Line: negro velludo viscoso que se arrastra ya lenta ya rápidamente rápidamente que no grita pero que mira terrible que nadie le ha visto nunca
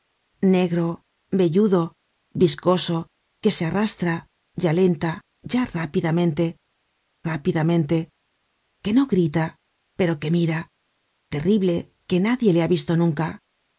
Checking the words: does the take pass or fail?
pass